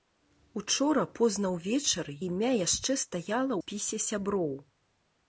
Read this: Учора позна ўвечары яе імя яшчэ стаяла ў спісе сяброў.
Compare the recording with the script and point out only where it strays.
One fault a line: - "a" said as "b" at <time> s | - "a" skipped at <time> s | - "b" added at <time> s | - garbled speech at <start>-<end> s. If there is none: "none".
- "яе" skipped at 2.1 s
- "ў" skipped at 3.5 s